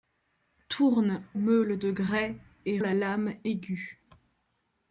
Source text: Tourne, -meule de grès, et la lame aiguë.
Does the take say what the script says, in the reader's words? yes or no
yes